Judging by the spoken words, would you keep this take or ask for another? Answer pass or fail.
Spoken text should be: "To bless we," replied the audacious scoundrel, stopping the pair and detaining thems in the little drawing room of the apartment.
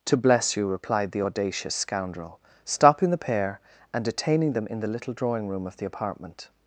fail